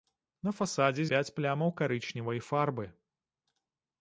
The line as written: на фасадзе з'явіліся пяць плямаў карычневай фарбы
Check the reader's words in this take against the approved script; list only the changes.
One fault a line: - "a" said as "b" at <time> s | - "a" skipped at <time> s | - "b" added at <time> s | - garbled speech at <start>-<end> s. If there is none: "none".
- "з'явіліся" skipped at 1.0 s